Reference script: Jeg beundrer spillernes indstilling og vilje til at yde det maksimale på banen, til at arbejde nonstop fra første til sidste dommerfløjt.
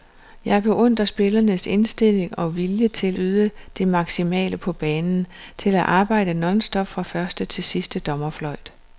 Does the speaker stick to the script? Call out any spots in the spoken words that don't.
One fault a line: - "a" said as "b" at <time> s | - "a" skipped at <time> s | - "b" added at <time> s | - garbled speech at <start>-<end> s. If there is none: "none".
- "at" skipped at 3.2 s